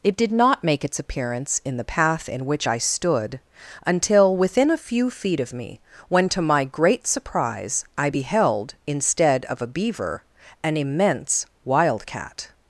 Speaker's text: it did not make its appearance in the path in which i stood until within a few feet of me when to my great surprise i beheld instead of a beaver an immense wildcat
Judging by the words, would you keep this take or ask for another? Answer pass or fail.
pass